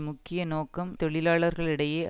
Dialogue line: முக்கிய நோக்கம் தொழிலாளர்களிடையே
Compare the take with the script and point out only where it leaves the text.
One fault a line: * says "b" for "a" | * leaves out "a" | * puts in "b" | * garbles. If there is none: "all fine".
all fine